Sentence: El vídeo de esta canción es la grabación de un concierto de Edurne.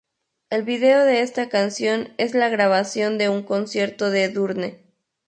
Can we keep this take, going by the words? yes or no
yes